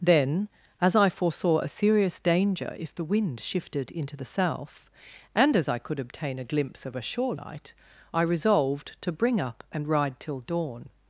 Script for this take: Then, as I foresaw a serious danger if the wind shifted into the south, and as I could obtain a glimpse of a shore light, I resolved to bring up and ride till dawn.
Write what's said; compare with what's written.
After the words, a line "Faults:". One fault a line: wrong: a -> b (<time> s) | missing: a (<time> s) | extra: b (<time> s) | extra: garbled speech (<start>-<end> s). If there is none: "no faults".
Then, as I foresaw a serious danger if the wind shifted into the south, and as I could obtain a glimpse of a shore light, I resolved to bring up and ride till dawn.
Faults:
no faults